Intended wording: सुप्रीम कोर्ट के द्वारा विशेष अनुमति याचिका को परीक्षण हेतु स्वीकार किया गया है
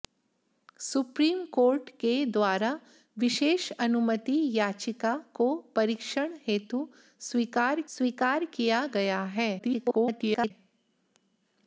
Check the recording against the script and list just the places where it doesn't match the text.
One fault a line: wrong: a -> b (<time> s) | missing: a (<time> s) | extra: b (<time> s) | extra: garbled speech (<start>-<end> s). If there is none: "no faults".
extra: स्वीकार (8.0 s)
extra: garbled speech (9.6-10.5 s)